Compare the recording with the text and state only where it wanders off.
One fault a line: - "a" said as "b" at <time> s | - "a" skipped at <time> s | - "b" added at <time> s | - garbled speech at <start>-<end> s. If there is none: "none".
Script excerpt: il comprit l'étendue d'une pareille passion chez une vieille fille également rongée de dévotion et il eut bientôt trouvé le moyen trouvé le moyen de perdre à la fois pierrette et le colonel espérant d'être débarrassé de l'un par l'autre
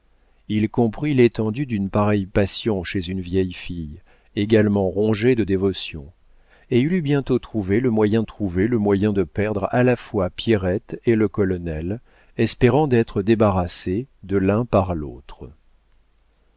none